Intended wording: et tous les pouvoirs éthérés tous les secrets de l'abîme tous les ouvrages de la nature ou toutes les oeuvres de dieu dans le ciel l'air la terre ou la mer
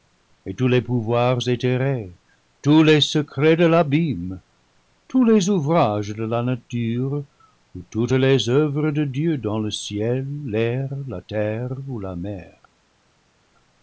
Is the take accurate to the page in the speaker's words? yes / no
yes